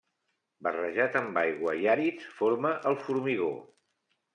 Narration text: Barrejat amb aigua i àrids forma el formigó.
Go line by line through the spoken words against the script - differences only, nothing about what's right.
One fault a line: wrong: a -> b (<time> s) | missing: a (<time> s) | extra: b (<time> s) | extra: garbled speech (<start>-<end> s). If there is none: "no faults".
no faults